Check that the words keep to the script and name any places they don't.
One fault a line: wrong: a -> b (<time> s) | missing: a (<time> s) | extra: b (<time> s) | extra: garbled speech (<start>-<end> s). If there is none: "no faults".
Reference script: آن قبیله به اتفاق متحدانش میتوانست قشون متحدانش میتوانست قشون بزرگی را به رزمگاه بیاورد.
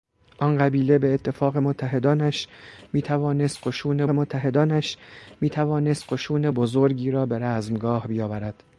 no faults